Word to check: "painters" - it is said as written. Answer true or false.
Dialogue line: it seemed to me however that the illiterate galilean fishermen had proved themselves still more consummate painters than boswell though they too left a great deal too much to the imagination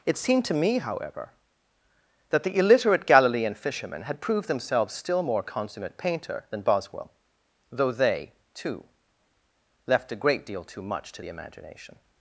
false